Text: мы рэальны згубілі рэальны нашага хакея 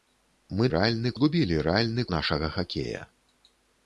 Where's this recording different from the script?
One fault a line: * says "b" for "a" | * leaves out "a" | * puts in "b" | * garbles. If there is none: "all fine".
all fine